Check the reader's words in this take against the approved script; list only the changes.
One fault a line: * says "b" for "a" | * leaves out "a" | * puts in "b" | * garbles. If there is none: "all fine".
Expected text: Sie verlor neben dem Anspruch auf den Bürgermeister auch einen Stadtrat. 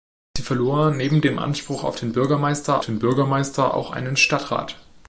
* puts in "den Bürgermeister"